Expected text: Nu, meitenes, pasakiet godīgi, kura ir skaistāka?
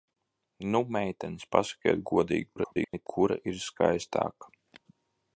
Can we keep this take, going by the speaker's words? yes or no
no